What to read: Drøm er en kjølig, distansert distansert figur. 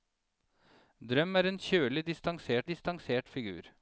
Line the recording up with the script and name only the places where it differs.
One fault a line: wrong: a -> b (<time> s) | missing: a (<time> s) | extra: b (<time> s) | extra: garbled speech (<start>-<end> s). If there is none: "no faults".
no faults